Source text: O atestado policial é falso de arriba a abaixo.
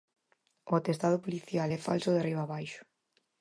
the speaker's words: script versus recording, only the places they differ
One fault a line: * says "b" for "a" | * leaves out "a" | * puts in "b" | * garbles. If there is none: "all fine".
all fine